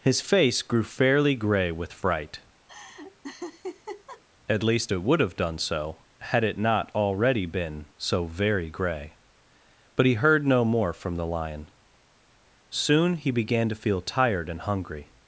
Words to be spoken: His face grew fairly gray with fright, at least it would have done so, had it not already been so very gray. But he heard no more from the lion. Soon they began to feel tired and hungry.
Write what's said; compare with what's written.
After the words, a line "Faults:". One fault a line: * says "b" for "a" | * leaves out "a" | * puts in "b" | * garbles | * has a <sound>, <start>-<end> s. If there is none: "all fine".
His face grew fairly gray with fright, at least it would have done so, had it not already been so very gray. But he heard no more from the lion. Soon he began to feel tired and hungry.
Faults:
* has a laugh, 2.7-4.2 s
* says "he" for "they"